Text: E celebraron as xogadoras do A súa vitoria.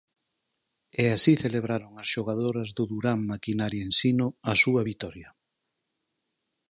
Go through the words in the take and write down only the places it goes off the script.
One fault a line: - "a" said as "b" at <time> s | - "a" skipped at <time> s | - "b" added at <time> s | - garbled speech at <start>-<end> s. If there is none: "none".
- "así" added at 1.1 s
- "Durán Maquinaria Ensino" added at 2.9 s